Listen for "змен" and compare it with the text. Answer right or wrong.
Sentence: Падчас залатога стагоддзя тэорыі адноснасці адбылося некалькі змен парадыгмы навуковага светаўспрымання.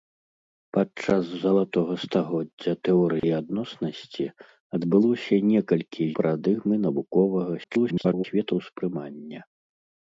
wrong